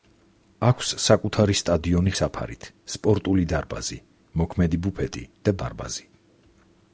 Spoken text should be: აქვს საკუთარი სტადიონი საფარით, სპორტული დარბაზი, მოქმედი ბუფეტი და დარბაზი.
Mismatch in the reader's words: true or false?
false